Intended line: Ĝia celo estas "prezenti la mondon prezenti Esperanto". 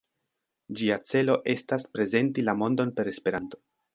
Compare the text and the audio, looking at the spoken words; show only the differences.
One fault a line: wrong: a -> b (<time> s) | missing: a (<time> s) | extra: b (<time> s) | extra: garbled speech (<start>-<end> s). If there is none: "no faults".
wrong: prezenti -> per (3.0 s)